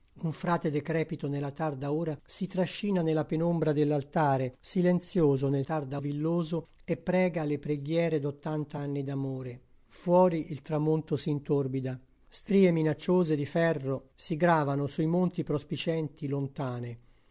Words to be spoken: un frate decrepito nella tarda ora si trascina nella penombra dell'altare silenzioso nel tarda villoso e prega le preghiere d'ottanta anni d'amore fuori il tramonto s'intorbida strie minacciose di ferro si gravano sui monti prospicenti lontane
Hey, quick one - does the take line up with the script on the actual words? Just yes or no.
yes